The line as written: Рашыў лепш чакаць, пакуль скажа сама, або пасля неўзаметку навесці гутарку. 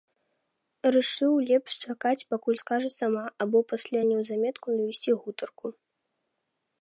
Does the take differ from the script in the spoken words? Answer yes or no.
no